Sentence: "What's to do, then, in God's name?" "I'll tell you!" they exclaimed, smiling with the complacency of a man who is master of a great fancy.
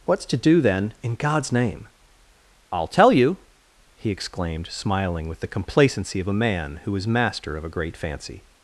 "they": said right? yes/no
no